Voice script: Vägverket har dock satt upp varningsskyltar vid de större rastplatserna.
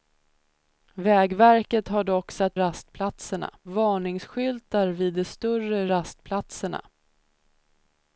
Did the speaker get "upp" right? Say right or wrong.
wrong